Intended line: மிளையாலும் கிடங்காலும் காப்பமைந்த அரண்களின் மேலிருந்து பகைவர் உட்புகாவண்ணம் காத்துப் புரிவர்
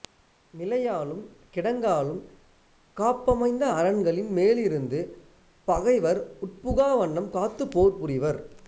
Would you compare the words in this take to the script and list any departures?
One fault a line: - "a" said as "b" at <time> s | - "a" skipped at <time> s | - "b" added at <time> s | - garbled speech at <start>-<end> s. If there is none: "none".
- "போர்" added at 7.7 s